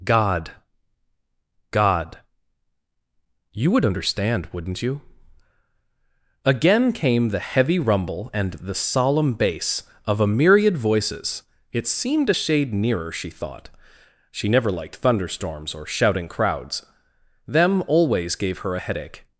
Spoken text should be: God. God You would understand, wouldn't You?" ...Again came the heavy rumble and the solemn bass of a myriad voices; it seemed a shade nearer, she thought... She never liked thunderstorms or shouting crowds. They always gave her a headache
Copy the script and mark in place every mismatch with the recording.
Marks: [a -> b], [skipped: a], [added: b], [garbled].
God. God You would understand, wouldn't You?" ...Again came the heavy rumble and the solemn bass of a myriad voices; it seemed a shade nearer, she thought... She never liked thunderstorms or shouting crowds. [They -> Them] always gave her a headache